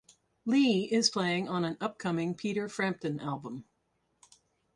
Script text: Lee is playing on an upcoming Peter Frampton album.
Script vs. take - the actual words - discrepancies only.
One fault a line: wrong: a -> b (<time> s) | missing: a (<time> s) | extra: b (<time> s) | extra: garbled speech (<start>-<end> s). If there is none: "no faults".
no faults